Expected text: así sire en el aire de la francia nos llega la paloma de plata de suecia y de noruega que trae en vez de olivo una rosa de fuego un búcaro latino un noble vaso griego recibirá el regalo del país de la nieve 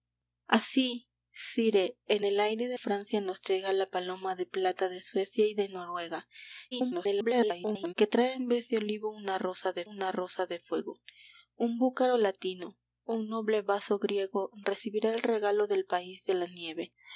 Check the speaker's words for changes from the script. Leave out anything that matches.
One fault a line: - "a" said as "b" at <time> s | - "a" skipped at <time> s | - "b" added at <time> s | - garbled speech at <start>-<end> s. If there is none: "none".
- "la" skipped at 2.8 s
- garbled speech at 6.7-7.9 s
- "una rosa de" added at 9.8 s